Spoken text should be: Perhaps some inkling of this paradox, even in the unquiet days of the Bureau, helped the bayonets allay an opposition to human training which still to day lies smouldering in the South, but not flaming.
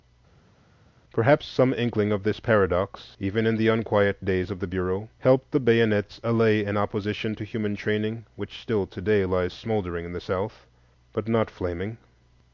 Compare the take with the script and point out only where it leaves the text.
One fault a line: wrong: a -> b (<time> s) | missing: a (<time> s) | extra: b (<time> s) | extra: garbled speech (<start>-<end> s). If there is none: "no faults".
no faults